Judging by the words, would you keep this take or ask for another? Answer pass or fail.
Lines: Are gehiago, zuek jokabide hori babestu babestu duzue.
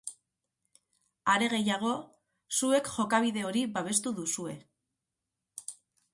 fail